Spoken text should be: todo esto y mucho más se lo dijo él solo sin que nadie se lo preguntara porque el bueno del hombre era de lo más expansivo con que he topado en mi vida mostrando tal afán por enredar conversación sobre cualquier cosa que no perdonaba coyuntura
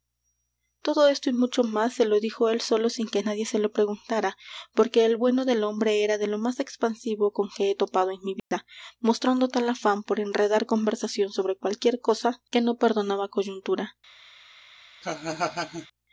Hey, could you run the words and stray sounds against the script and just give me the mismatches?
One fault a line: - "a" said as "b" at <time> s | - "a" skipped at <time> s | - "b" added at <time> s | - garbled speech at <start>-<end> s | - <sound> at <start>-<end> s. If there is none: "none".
- dropout at 8.4-8.5 s
- laugh at 15.0-15.9 s